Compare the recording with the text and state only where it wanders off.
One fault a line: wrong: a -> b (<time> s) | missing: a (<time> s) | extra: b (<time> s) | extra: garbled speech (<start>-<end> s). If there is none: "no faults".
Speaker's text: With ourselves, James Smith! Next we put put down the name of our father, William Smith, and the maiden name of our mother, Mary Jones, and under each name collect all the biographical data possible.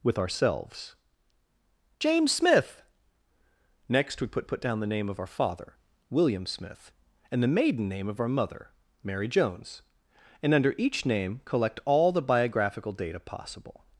no faults